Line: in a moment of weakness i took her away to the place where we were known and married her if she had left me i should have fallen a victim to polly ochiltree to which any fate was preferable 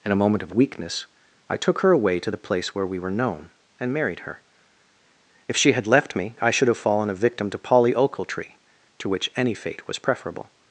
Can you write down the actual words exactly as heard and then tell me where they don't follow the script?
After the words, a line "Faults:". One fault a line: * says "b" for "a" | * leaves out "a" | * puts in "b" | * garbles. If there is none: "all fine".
in a moment of weakness i took her away to the place where we were known and married her if she had left me i should have fallen a victim to polly ochiltree to which any fate was preferable
Faults:
all fine